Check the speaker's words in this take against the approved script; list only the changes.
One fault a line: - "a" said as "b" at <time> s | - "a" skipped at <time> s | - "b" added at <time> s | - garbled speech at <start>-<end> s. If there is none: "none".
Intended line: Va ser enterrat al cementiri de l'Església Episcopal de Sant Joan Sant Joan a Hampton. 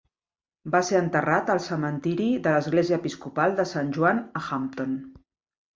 - "Sant Joan" skipped at 4.3 s